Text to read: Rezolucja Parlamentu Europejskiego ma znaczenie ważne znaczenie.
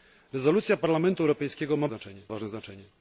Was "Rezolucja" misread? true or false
false